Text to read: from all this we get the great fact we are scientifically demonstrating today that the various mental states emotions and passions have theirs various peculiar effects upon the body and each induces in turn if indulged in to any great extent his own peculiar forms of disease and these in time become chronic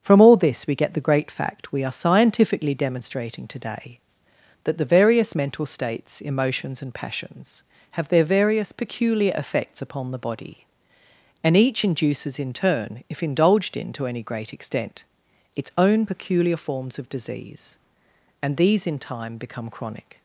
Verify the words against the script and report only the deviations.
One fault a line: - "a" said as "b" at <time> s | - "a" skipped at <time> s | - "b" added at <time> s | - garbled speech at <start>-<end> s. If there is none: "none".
- "theirs" said as "their" at 8.1 s
- "his" said as "its" at 15.6 s